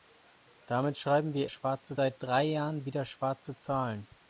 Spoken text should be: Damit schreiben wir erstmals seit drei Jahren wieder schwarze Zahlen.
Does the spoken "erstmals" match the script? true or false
false